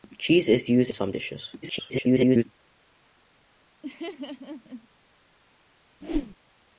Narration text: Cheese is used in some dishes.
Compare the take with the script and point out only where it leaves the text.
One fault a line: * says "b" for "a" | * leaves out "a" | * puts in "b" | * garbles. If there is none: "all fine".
* leaves out "in"
* garbles